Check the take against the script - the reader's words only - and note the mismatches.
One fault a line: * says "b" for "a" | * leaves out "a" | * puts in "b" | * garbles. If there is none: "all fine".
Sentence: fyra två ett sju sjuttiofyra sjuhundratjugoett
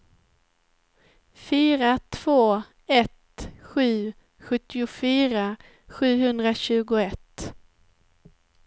all fine